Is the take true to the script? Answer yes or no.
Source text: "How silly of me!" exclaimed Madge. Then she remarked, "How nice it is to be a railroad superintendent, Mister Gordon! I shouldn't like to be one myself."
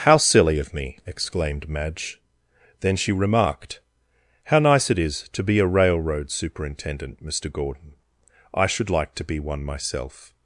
no